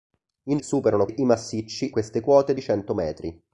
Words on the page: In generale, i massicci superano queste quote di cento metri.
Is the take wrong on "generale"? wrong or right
wrong